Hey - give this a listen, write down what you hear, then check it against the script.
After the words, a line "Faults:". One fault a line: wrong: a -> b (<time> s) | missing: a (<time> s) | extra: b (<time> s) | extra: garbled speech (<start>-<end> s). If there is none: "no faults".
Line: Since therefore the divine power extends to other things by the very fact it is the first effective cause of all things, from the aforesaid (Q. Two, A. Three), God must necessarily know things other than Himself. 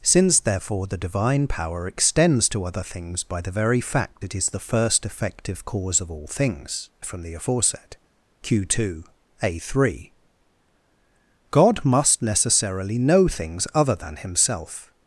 Since therefore the divine power extends to other things by the very fact it is the first effective cause of all things, from the aforesaid (Q. Two, A. Three), God must necessarily know things other than Himself.
Faults:
no faults